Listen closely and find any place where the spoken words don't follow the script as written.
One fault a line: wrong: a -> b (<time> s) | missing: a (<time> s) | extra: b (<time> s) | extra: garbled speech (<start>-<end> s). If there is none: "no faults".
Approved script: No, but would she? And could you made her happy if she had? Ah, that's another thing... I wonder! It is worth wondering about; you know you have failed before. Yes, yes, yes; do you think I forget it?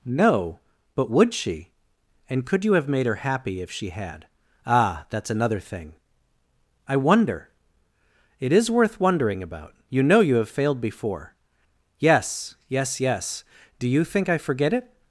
extra: have (2.7 s)